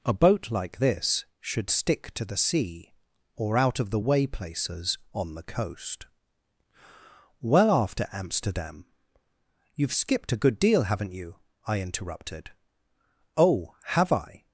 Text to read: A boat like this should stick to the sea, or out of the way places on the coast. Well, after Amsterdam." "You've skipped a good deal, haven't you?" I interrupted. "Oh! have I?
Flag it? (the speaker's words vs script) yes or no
no